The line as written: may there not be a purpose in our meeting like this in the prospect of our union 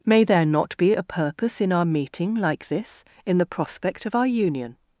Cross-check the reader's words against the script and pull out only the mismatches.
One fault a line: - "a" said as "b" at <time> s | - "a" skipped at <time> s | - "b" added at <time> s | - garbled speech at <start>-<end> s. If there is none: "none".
none